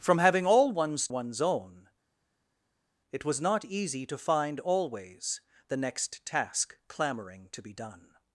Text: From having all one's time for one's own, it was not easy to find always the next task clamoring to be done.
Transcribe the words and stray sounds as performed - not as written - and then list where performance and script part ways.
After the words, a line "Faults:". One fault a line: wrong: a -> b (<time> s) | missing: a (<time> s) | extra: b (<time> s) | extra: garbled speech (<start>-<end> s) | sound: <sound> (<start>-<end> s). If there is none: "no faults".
From having all one's one's own, it was not easy to find always the next task clamoring to be done.
Faults:
missing: time for (1.1 s)